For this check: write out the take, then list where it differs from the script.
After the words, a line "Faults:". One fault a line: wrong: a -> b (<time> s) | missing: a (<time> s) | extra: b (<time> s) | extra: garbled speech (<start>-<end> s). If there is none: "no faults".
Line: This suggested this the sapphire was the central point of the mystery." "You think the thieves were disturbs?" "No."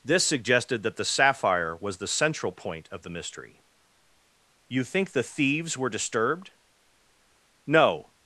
This suggested that the sapphire was the central point of the mystery." "You think the thieves were disturbed?" "No."
Faults:
wrong: this -> that (0.8 s)
wrong: disturbs -> disturbed (5.9 s)